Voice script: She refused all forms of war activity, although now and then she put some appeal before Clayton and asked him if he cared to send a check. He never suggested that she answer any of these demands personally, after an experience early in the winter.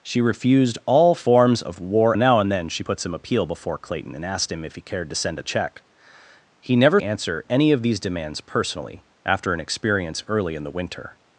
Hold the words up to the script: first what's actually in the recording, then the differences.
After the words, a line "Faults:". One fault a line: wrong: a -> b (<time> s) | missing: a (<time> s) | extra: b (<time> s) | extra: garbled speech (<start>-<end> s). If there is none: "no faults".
She refused all forms of war now and then she put some appeal before Clayton and asked him if he cared to send a check. He never answer any of these demands personally, after an experience early in the winter.
Faults:
missing: activity although (2.2 s)
missing: suggested that she (7.0 s)